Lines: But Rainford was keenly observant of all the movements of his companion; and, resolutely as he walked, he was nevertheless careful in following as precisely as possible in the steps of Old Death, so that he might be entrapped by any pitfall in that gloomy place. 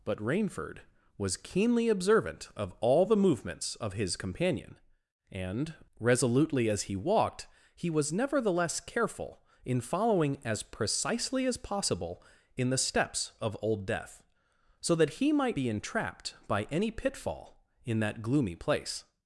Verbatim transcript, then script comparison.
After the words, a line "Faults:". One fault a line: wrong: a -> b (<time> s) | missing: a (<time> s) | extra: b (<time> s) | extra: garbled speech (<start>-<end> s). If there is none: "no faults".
But Rainford was keenly observant of all the movements of his companion; and, resolutely as he walked, he was nevertheless careful in following as precisely as possible in the steps of Old Death, so that he might be entrapped by any pitfall in that gloomy place.
Faults:
no faults